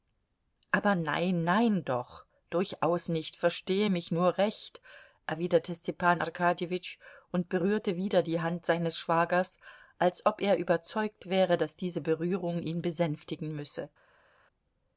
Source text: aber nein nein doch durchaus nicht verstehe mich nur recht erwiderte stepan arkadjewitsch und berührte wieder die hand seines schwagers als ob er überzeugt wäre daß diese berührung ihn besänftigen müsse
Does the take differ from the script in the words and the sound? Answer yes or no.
no